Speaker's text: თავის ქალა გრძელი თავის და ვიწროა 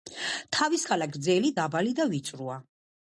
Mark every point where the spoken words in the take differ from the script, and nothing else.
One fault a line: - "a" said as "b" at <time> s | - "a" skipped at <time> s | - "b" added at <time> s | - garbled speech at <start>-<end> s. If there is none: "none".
- "თავის" said as "დაბალი" at 1.6 s